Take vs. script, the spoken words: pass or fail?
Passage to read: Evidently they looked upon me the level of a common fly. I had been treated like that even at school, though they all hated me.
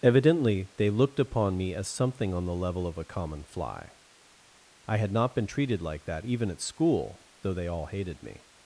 fail